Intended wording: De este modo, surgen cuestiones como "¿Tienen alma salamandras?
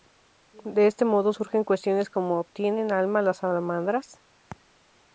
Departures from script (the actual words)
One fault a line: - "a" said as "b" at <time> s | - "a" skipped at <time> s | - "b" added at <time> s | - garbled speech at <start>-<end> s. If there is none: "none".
- "las" added at 3.2 s